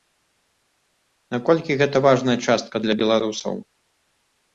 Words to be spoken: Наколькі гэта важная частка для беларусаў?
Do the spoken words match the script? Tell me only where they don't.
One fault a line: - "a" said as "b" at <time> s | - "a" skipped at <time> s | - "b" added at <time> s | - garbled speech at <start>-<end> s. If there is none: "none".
none